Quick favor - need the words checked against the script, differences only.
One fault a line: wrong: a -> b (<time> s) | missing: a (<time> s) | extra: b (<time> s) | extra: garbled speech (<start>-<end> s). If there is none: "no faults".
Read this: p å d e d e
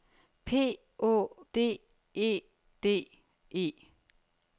no faults